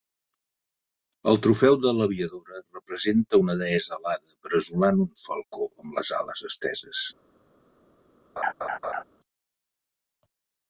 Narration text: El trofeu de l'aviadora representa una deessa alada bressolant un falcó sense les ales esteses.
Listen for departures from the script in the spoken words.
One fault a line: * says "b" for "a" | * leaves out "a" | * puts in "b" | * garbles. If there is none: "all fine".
* says "amb" for "sense"